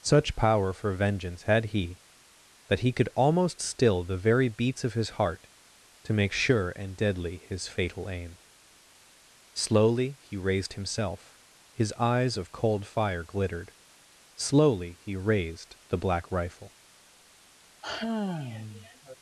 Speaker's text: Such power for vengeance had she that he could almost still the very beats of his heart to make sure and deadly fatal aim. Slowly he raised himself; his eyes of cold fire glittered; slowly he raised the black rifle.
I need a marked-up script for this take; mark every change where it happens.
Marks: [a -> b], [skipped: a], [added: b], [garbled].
Such power for vengeance had [she -> he] that he could almost still the very beats of his heart to make sure and deadly [added: his] fatal aim. Slowly he raised himself; his eyes of cold fire glittered; slowly he raised the black rifle.